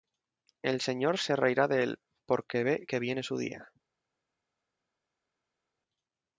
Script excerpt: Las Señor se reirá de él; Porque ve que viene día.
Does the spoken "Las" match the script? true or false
false